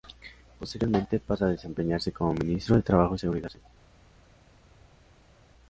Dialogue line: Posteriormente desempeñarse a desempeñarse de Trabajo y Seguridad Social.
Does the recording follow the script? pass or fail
fail